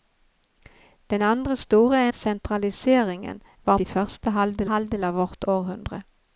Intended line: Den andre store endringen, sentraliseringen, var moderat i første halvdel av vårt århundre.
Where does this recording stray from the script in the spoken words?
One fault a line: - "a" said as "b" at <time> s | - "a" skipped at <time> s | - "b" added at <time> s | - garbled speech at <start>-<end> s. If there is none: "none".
- "endringen" skipped at 2.1 s
- "moderat" skipped at 3.8 s
- "halvdel" added at 4.6 s